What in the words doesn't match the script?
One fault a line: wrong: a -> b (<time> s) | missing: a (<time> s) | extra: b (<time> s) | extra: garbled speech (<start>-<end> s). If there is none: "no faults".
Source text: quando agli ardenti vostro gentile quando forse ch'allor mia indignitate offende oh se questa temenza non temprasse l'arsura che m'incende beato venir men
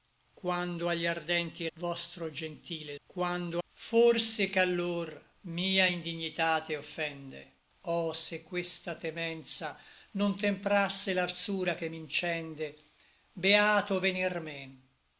no faults